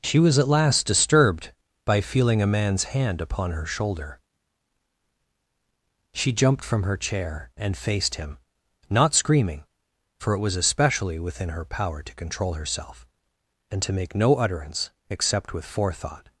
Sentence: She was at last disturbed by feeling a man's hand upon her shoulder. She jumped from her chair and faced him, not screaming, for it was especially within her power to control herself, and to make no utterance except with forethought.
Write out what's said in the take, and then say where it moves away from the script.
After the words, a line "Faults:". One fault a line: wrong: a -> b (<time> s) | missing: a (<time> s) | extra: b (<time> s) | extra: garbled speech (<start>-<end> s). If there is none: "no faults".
She was at last disturbed by feeling a man's hand upon her shoulder. She jumped from her chair and faced him, not screaming, for it was especially within her power to control herself, and to make no utterance except with forethought.
Faults:
no faults